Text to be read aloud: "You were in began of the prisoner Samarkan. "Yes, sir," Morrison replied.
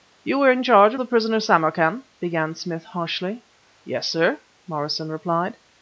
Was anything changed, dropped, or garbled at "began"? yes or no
yes